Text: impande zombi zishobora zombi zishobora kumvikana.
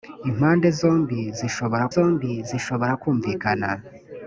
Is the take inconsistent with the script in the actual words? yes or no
no